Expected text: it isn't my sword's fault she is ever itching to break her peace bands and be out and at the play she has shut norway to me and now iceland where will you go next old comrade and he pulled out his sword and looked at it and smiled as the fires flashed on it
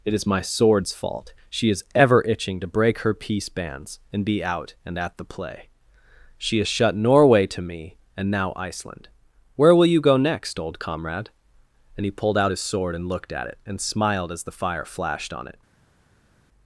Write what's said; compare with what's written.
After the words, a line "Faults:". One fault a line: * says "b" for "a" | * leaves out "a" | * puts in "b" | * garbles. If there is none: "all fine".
it is my sword's fault she is ever itching to break her peace bands and be out and at the play she has shut norway to me and now iceland where will you go next old comrade and he pulled out his sword and looked at it and smiled as the fire flashed on it
Faults:
* says "is" for "isn't"
* says "fire" for "fires"